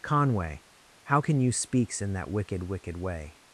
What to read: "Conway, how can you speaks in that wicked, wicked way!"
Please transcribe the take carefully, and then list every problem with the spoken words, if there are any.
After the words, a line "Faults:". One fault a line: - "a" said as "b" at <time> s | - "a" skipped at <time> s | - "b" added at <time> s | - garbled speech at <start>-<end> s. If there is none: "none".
"Conway, how can you speaks in that wicked, wicked way!"
Faults:
none